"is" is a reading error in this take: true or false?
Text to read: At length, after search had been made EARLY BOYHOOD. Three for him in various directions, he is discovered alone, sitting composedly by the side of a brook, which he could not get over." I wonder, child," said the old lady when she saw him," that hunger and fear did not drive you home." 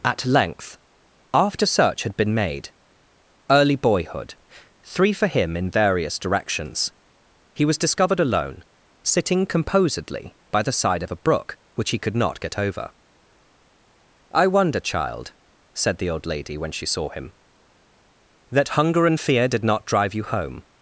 true